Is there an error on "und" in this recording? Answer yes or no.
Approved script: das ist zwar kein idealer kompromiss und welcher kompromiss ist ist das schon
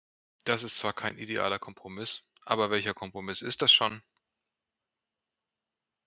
yes